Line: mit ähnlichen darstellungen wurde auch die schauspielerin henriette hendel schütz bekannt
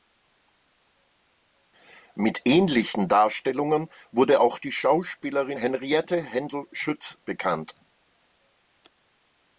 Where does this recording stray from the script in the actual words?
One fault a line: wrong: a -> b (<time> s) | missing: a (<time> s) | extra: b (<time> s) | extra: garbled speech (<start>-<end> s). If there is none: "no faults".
no faults